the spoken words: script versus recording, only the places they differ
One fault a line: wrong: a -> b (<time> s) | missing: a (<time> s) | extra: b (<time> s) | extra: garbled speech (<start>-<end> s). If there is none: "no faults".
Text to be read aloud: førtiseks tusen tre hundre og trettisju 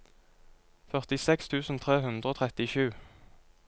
no faults